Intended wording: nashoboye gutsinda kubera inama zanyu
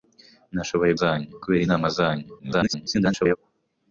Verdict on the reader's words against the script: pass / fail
fail